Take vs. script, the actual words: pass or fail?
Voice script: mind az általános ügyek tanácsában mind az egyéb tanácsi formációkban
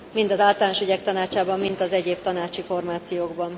pass